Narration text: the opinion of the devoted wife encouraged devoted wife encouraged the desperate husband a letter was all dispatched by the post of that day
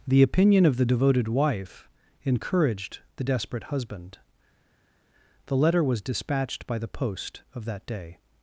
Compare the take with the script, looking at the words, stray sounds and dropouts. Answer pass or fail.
fail